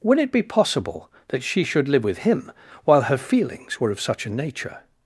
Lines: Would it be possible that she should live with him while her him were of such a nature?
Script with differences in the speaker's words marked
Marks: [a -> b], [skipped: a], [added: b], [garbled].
Would it be possible that she should live with him while her [him -> feelings] were of such a nature?